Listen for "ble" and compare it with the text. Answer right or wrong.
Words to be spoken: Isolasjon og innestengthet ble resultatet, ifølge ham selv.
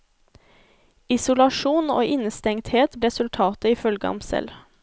wrong